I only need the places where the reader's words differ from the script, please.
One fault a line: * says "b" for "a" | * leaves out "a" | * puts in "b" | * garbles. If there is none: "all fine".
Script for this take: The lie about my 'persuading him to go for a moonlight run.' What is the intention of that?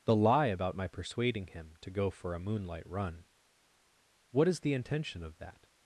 all fine